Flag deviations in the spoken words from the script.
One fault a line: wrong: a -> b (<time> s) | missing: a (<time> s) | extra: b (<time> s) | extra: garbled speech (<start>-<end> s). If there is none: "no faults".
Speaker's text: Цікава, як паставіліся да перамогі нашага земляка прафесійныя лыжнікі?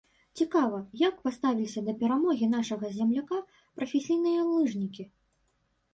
no faults